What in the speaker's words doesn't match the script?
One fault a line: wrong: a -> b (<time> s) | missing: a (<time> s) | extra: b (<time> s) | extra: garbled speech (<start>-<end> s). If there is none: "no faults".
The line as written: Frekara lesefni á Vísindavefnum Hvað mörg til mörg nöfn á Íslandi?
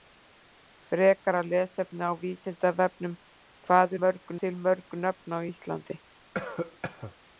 no faults